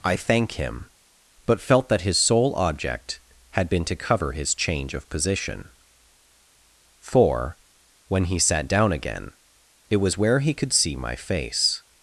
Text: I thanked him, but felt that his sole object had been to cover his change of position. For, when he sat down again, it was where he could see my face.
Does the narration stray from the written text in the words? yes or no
yes